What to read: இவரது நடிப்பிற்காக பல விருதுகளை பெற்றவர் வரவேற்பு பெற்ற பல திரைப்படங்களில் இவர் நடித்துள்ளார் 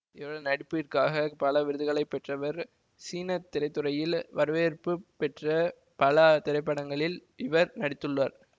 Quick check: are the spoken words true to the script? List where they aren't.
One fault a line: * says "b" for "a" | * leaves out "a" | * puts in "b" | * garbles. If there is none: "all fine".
* puts in "சீன திரைத்துறையில்"